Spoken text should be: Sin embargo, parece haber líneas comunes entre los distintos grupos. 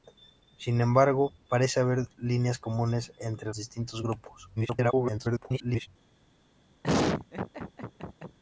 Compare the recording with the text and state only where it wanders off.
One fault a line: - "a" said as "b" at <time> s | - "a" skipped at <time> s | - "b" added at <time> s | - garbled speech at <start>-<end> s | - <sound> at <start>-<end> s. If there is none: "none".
- "los" skipped at 3.5 s
- garbled speech at 4.6-5.9 s
- laugh at 6.8-8.4 s